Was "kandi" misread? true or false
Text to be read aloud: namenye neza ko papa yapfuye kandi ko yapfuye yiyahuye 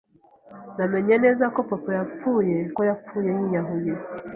true